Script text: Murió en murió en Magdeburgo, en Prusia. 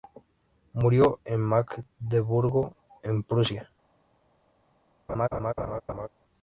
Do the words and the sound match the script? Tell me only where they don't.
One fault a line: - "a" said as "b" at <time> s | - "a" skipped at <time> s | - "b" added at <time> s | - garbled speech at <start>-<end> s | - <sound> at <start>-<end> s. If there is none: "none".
- "murió en" skipped at 1.4 s
- laugh at 5.1-6.1 s